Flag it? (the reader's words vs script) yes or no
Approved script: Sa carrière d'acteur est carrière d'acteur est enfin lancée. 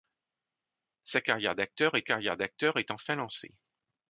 no